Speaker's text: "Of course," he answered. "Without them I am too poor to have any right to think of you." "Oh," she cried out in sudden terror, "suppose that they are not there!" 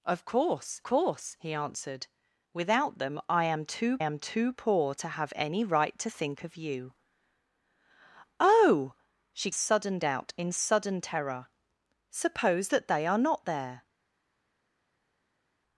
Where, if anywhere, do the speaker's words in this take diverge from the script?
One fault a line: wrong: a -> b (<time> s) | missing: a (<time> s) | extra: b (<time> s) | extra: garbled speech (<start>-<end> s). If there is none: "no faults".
extra: course (0.8 s)
extra: am too (4.0 s)
wrong: cried -> sudden (9.5 s)